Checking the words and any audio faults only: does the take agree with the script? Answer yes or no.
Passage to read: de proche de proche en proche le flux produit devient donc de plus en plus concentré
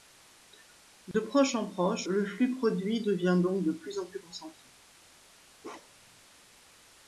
no